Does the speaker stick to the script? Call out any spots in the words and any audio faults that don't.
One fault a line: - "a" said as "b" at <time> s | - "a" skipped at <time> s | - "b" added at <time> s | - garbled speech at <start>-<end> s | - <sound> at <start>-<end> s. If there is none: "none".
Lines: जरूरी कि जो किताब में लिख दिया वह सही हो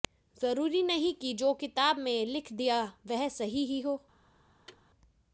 - "नहीं" added at 0.8 s
- "ही" added at 3.6 s
- thud at 4.7-4.9 s